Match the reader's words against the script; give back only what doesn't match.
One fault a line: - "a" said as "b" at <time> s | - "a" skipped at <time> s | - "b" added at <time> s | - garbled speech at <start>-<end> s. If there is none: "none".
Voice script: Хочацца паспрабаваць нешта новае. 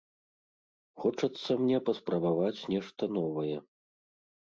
- "мне" added at 1.6 s